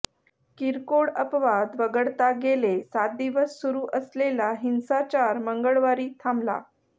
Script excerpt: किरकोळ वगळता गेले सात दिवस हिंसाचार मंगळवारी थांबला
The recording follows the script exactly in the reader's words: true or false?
false